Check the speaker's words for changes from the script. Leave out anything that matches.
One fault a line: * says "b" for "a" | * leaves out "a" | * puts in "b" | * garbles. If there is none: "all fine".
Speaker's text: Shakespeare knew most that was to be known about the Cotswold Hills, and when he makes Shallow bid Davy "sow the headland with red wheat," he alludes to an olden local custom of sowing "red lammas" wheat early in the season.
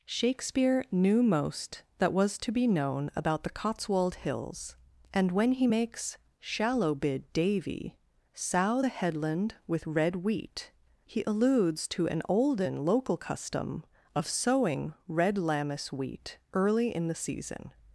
all fine